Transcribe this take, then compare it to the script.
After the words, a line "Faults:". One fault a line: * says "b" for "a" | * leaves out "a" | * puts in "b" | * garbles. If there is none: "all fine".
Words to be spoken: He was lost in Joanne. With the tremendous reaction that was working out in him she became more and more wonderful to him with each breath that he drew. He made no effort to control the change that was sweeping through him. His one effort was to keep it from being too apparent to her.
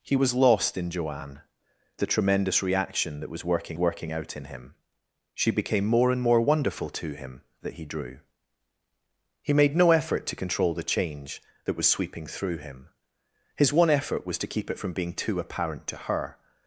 He was lost in Joanne. The tremendous reaction that was working working out in him she became more and more wonderful to him that he drew. He made no effort to control the change that was sweeping through him. His one effort was to keep it from being too apparent to her.
Faults:
* leaves out "With"
* puts in "working"
* leaves out "with each breath"